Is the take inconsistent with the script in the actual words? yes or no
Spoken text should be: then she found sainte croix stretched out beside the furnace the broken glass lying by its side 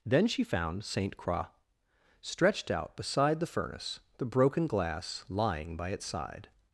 no